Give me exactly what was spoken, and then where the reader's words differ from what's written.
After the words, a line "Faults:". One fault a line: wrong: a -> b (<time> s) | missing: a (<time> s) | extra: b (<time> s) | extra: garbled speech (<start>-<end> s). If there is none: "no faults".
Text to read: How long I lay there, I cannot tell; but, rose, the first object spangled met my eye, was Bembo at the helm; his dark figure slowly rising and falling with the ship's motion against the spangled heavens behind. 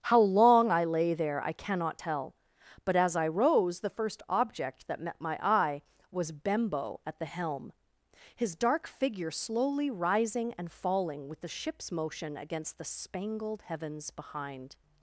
How long I lay there, I cannot tell; but, as I rose, the first object that met my eye, was Bembo at the helm; his dark figure slowly rising and falling with the ship's motion against the spangled heavens behind.
Faults:
extra: as I (3.0 s)
wrong: spangled -> that (4.9 s)